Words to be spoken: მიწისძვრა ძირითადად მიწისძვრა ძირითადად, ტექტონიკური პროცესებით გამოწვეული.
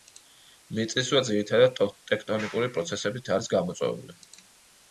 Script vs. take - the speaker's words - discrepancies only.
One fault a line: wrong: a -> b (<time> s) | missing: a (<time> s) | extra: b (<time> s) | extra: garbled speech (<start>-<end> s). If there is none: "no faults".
missing: მიწისძვრა ძირითადად (1.8 s)
extra: არის (3.4 s)